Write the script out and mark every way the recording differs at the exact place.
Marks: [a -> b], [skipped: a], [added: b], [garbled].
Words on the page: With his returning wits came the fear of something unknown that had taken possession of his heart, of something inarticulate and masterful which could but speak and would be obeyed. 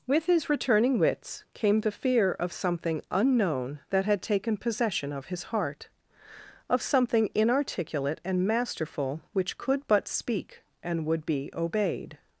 With his returning wits came the fear of something unknown that had taken possession of his heart, of something inarticulate and masterful which could but speak and would be obeyed.